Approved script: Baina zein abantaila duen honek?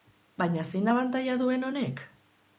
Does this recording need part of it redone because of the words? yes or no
no